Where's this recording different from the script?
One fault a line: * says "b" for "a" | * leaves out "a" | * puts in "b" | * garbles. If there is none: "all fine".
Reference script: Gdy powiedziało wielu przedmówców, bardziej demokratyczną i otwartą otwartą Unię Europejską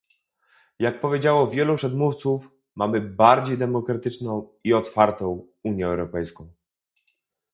* says "Jak" for "Gdy"
* puts in "mamy"
* leaves out "otwartą"